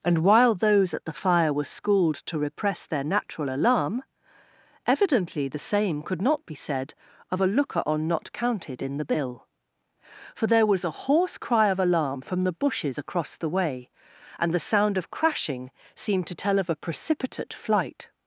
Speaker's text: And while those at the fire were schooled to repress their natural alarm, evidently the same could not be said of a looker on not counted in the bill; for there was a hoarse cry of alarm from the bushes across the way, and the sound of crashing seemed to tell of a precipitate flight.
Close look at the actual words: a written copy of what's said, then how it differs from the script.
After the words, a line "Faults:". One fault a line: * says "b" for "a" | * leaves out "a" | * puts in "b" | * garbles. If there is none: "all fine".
And while those at the fire were schooled to repress their natural alarm, evidently the same could not be said of a looker on not counted in the bill; for there was a hoarse cry of alarm from the bushes across the way, and the sound of crashing seemed to tell of a precipitate flight.
Faults:
all fine